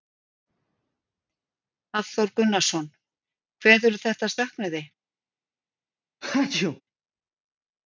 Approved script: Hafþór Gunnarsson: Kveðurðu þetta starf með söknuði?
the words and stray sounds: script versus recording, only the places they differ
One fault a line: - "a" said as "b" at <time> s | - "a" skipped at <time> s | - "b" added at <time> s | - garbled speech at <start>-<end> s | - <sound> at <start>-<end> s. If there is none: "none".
- "starf með" skipped at 4.3 s
- sneeze at 6.2-6.8 s